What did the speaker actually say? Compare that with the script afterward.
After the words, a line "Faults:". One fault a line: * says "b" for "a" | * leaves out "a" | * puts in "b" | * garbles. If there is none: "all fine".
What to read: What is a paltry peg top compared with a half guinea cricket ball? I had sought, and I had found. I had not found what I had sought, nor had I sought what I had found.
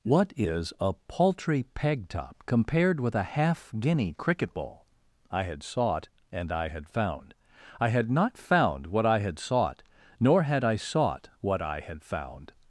What is a paltry peg top compared with a half guinea cricket ball? I had sought, and I had found. I had not found what I had sought, nor had I sought what I had found.
Faults:
all fine